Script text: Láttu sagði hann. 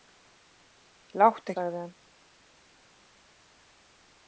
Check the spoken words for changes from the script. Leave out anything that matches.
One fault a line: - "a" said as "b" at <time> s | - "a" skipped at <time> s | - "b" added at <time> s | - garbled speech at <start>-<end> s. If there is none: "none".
none